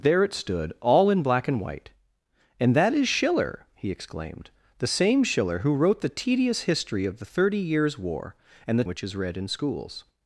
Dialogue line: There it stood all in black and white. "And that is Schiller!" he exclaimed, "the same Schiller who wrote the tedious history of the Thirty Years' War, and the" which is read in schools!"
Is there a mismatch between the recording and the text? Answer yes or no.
no